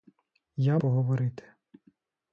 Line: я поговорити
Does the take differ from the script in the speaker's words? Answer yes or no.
no